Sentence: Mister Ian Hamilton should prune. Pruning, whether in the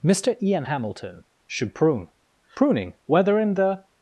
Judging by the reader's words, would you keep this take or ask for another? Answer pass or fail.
pass